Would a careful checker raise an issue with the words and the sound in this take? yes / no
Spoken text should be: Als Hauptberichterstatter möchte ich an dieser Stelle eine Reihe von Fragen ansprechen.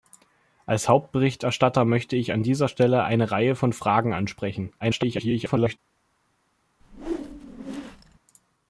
yes